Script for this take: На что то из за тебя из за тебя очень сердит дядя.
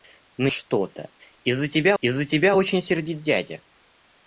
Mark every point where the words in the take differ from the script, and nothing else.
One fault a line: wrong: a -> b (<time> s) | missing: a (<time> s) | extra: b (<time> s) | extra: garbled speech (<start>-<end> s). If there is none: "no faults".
no faults